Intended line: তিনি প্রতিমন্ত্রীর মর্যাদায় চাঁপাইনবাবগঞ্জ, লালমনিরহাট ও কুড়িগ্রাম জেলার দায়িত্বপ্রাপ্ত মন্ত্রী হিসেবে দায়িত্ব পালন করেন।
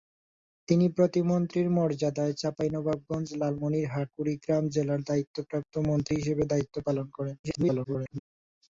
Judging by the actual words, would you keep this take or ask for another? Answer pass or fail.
fail